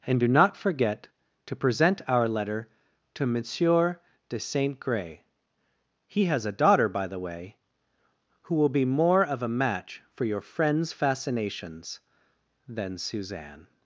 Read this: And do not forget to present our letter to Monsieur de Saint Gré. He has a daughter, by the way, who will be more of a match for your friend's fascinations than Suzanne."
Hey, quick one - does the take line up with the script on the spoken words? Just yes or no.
yes